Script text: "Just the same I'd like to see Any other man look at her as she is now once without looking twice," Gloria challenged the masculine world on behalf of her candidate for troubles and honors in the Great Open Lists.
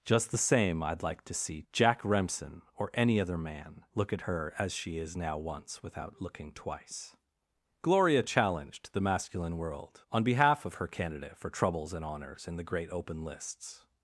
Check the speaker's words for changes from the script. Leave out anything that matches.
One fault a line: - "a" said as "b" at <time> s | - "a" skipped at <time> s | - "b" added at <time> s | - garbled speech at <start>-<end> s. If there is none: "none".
- "Jack Remsen or" added at 1.7 s